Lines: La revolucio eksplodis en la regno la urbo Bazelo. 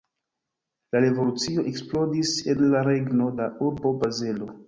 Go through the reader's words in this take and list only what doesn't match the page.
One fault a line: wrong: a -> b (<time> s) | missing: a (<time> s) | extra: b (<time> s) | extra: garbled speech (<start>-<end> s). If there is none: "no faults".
no faults